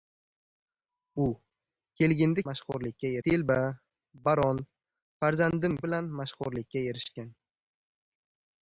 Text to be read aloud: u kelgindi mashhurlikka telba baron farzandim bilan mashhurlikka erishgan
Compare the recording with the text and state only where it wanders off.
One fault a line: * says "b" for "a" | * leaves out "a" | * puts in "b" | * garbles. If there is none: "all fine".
all fine